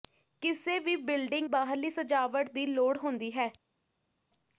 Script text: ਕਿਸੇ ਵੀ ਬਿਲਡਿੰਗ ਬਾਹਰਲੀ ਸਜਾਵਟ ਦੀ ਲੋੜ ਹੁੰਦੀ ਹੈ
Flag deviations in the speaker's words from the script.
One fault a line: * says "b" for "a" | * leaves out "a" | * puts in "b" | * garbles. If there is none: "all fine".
all fine